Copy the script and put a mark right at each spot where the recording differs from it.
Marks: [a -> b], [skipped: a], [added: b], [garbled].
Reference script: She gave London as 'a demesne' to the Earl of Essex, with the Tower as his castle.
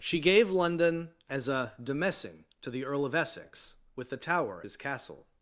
She gave London as 'a demesne' to the Earl of Essex, with the Tower [skipped: as] his castle.